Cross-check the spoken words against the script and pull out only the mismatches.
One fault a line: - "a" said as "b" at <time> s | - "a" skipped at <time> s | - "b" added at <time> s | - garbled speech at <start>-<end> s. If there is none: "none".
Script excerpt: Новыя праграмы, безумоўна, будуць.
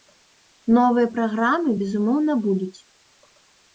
none